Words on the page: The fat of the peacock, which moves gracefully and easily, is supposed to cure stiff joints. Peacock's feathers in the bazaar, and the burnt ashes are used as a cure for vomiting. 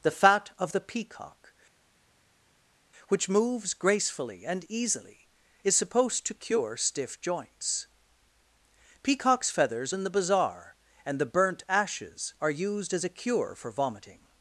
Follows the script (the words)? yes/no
yes